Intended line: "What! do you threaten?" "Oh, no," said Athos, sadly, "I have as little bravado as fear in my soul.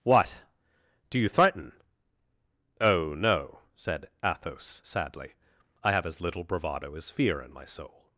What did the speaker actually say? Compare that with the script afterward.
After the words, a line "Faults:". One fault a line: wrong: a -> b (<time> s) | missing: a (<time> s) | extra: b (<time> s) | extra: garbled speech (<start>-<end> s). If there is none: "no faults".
"What! do you threaten?" "Oh, no," said Athos, sadly, "I have as little bravado as fear in my soul.
Faults:
no faults